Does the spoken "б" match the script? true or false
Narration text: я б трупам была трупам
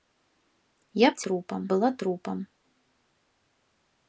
true